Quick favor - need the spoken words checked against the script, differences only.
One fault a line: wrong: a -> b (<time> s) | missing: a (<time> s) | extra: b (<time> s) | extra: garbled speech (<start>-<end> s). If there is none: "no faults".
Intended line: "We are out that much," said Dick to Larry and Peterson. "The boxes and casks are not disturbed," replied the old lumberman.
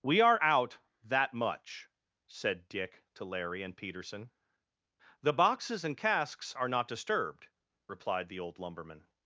no faults